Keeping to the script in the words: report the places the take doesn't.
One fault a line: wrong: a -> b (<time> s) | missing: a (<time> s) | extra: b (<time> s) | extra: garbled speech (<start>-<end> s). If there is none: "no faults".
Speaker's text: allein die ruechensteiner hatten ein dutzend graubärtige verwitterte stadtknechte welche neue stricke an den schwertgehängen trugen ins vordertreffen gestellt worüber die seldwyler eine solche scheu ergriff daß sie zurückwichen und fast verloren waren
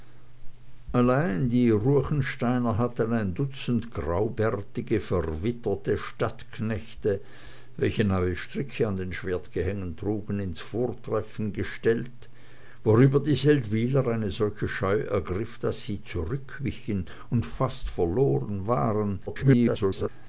extra: garbled speech (19.3-20.1 s)